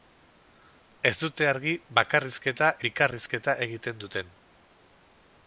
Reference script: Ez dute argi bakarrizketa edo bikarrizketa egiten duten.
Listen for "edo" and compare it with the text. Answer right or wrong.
wrong